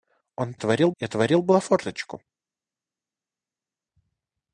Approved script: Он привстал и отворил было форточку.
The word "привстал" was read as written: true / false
false